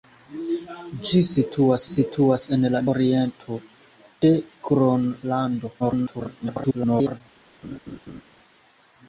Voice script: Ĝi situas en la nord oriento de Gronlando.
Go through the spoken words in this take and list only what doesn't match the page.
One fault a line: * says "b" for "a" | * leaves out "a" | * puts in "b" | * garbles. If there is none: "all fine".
* puts in "situas"
* leaves out "nord"
* garbles